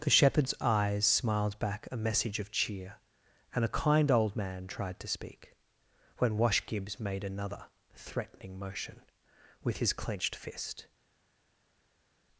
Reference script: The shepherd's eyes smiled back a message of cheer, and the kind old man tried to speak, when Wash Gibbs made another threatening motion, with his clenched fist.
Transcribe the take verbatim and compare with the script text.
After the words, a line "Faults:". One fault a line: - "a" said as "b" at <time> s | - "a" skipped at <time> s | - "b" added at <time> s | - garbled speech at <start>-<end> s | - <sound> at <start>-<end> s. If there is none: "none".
The shepherd's eyes smiled back a message of cheer, and a kind old man tried to speak, when Wash Gibbs made another threatening motion, with his clenched fist.
Faults:
- "the" said as "a" at 3.6 s